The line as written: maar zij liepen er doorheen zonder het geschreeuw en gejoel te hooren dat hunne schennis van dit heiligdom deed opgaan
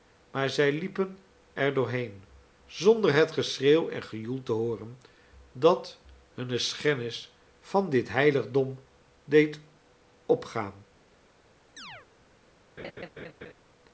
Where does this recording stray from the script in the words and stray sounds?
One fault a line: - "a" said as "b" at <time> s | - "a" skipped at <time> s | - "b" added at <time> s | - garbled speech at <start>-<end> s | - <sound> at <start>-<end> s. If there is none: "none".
- chirp at 11.8-12.1 s
- laugh at 12.8-13.5 s